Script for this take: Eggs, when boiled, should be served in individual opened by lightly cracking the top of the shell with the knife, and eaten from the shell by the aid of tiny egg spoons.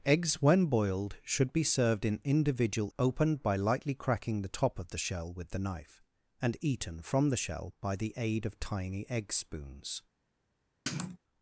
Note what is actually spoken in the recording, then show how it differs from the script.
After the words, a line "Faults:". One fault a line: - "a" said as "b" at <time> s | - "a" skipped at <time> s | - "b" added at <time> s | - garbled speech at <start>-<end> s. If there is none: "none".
Eggs, when boiled, should be served in individual opened by lightly cracking the top of the shell with the knife, and eaten from the shell by the aid of tiny egg spoons.
Faults:
none